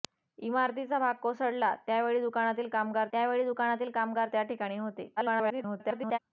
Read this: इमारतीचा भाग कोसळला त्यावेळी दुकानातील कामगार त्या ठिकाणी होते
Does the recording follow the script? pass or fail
fail